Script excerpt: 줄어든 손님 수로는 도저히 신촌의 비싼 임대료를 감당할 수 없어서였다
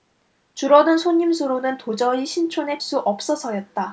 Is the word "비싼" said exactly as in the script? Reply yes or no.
no